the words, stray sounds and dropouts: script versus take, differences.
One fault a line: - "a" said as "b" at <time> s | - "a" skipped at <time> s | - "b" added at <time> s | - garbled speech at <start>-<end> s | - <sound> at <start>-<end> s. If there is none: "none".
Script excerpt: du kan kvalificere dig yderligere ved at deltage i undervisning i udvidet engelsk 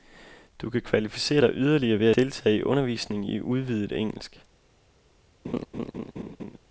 - "at" skipped at 2.1 s
- laugh at 5.4-6.6 s